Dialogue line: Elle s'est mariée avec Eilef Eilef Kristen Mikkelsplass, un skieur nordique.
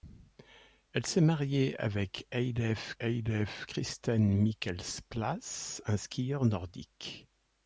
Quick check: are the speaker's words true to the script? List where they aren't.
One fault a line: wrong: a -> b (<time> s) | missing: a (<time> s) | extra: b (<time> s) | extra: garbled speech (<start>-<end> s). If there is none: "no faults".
no faults